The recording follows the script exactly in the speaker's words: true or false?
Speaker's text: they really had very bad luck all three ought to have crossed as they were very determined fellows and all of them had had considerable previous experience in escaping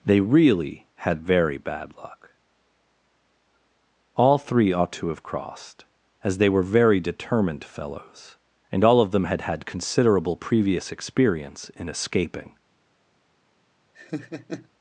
true